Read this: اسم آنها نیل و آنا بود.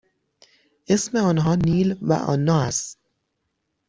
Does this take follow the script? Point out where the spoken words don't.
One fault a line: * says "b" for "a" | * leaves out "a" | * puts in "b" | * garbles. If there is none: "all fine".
* says "است" for "بود"